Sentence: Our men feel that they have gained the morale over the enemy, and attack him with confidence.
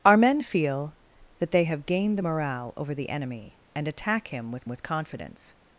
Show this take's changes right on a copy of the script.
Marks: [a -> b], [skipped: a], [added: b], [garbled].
Our men feel that they have gained the morale over the enemy, and attack him with [added: with] confidence.